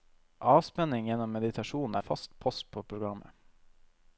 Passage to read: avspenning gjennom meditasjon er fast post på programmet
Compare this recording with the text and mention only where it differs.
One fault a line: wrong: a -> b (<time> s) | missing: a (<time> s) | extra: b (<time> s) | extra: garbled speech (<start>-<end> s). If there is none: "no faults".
no faults